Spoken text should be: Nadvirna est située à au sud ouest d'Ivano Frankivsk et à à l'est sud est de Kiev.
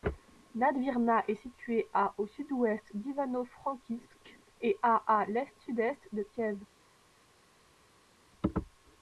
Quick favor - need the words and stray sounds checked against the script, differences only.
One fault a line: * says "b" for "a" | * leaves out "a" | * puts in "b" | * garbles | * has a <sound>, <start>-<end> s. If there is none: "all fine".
all fine